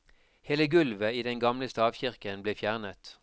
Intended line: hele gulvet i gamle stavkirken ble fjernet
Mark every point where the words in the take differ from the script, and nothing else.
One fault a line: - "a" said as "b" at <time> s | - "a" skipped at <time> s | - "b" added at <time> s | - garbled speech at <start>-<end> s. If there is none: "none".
- "den" added at 1.3 s